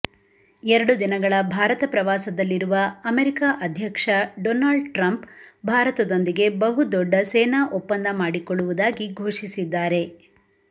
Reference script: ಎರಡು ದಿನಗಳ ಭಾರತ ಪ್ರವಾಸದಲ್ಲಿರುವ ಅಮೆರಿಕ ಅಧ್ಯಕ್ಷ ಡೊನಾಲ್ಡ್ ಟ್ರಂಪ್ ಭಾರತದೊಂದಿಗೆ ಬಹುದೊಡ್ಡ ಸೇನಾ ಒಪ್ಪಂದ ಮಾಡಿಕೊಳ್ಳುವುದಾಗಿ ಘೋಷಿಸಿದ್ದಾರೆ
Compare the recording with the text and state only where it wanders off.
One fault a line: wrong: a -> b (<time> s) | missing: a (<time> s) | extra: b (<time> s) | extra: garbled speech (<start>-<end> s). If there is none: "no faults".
no faults